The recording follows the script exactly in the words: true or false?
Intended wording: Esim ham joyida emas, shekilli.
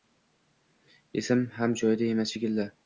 true